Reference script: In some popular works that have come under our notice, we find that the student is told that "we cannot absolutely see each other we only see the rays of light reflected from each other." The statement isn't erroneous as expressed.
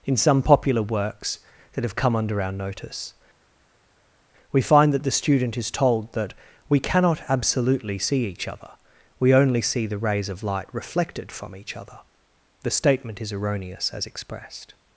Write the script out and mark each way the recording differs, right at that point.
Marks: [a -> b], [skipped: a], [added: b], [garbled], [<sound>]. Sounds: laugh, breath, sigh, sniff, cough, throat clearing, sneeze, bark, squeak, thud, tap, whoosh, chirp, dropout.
In some popular works that have come under our notice, we find that the student is told that "we cannot absolutely see each other we only see the rays of light reflected from each other." The statement [isn't -> is] erroneous as expressed.